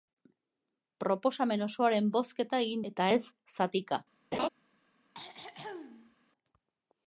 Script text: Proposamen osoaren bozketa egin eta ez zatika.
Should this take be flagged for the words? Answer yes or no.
no